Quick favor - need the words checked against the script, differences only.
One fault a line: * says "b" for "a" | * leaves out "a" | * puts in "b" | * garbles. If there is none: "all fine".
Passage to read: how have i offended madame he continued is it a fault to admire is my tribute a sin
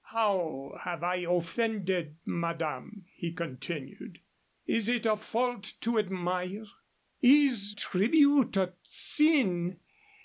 * leaves out "my"